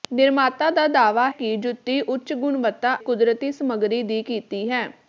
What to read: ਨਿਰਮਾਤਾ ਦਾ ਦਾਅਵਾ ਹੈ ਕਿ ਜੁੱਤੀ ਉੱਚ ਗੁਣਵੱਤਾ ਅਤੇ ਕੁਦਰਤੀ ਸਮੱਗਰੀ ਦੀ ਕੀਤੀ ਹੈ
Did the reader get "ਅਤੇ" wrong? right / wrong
wrong